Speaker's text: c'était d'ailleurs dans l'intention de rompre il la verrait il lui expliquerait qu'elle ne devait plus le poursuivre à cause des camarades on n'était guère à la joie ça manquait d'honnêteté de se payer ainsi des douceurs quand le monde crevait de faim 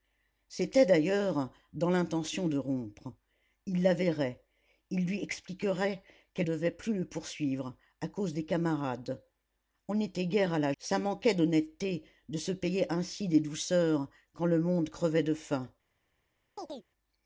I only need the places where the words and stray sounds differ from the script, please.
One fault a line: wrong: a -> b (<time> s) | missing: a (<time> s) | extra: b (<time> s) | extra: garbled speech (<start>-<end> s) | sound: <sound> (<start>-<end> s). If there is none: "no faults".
missing: ne (6.5 s)
missing: joie (10.7 s)
sound: chirp (16.6-16.9 s)